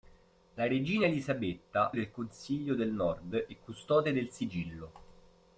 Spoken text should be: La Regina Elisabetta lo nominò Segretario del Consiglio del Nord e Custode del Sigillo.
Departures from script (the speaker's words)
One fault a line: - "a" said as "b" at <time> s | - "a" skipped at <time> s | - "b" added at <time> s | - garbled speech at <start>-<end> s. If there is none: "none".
- "lo nominò Segretario" skipped at 1.9 s